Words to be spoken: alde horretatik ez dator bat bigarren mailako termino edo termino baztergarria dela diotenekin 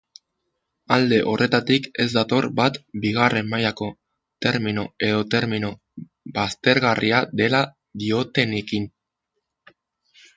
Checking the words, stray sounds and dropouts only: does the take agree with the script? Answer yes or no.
yes